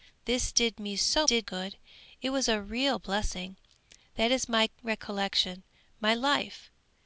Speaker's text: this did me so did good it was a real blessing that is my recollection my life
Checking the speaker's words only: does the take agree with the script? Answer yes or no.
yes